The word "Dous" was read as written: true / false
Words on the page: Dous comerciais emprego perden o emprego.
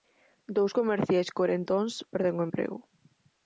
true